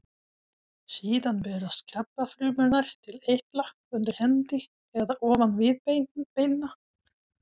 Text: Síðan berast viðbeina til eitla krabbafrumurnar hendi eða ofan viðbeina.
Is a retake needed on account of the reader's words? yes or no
yes